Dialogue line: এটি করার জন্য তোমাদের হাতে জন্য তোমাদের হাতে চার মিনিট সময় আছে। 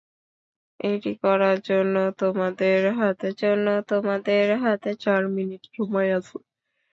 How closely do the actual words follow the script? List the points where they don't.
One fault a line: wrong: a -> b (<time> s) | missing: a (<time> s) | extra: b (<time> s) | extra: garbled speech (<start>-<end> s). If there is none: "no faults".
no faults